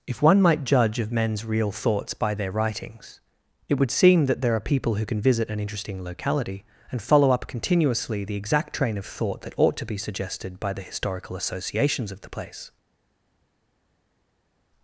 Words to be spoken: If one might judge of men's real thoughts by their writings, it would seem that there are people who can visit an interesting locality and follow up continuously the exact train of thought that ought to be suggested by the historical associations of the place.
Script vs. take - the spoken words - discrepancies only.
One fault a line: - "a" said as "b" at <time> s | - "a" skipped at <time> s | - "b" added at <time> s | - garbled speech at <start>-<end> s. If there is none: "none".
none